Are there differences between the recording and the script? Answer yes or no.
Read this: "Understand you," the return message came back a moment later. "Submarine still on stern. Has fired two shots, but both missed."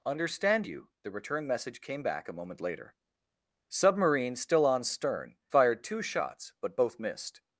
yes